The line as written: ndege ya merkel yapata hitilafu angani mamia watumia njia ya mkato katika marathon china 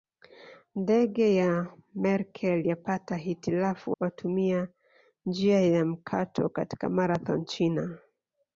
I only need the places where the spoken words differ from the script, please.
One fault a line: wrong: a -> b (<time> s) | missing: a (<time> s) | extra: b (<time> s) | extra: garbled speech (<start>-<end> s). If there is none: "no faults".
missing: angani mamia (4.0 s)